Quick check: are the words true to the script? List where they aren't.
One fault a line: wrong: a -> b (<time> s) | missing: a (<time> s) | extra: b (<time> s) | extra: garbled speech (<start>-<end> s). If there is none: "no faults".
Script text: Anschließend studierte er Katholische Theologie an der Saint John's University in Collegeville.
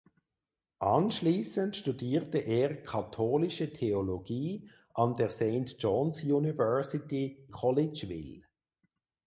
missing: in (7.5 s)